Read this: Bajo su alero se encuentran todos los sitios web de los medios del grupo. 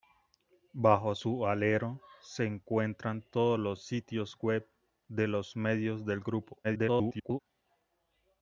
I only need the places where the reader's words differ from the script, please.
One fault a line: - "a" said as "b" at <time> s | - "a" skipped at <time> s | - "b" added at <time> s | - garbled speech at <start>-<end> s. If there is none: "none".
- garbled speech at 6.6-7.4 s